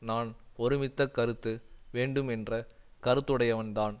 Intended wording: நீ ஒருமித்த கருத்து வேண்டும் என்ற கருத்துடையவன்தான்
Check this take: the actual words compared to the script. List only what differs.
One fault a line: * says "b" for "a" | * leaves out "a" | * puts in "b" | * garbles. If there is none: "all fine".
* says "நான்" for "நீ"